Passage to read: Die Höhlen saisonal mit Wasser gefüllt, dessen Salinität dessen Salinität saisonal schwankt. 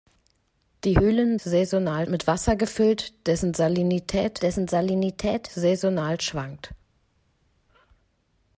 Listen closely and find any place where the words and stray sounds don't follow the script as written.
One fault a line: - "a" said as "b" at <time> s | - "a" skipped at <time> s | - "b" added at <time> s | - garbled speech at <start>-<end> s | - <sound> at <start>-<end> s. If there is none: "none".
none